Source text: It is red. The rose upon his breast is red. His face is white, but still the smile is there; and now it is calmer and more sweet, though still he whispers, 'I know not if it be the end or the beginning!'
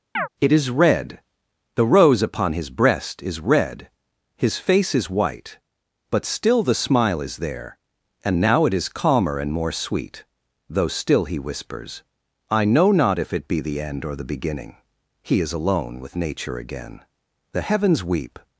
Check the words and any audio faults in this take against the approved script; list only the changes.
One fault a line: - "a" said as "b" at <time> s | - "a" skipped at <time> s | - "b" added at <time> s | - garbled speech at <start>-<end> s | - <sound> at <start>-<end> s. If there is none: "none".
- chirp at 0.2-0.3 s
- "He is alone with Nature again The heavens weep" added at 15.2 s